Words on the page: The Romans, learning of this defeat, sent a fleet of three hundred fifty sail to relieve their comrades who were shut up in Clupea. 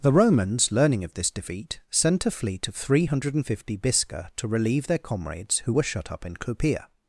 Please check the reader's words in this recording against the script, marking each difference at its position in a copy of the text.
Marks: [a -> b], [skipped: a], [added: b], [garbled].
The Romans, learning of this defeat, sent a fleet of three hundred fifty [sail -> bisca] to relieve their comrades who were shut up in Clupea.